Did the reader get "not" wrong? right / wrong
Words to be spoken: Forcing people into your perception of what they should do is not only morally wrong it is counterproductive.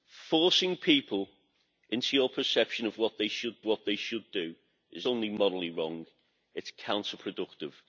wrong